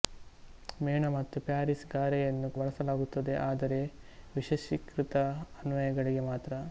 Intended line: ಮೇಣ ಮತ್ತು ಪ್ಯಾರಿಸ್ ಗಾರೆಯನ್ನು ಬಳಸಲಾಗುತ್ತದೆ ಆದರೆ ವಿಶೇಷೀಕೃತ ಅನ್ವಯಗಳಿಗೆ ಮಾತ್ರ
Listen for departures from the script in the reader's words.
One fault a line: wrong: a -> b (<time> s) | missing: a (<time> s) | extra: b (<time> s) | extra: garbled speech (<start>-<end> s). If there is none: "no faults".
no faults